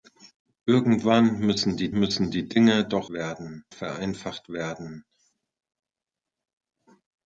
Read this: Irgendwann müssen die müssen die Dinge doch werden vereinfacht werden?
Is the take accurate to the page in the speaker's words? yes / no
yes